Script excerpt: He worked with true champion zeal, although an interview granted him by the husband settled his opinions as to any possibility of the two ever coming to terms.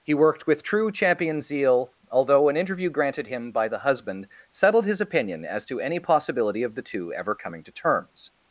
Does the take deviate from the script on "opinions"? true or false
true